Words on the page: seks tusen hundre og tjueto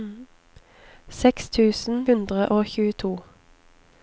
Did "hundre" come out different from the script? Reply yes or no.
no